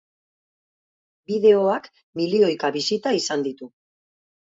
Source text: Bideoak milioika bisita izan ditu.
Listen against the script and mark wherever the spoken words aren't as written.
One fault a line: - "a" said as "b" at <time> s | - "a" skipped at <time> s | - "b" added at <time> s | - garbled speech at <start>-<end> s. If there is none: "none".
none